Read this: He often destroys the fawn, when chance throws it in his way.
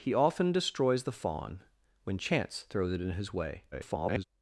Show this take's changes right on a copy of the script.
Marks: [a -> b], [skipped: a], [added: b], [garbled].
He often destroys the fawn, when chance throws it in his way. [garbled]